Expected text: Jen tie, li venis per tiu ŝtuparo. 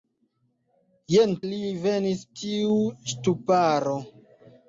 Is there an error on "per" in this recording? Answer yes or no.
yes